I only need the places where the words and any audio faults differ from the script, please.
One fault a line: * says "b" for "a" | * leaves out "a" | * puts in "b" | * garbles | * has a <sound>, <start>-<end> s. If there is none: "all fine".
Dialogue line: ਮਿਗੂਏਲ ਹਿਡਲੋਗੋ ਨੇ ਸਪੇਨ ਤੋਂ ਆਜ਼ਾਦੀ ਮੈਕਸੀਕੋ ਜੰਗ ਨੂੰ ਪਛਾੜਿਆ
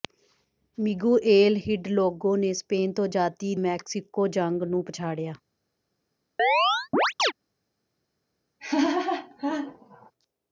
* has a chirp, 6.4-7.3 s
* has a laugh, 8.6-10.1 s